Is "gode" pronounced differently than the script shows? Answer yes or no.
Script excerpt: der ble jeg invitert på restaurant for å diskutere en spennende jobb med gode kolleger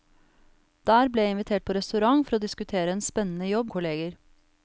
yes